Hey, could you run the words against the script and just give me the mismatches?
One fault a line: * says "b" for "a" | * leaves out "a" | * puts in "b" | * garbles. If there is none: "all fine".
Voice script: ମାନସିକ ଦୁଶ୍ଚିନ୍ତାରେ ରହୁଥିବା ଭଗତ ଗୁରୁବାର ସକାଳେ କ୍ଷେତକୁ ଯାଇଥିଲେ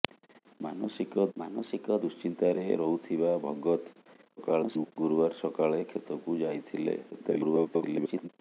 * puts in "ମାନସିକ"
* garbles
* garbles